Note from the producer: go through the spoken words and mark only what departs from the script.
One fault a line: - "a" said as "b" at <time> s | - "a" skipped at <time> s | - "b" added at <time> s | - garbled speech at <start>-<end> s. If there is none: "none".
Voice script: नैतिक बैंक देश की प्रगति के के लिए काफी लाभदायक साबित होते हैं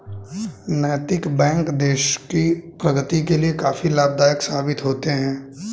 - "के" skipped at 3.4 s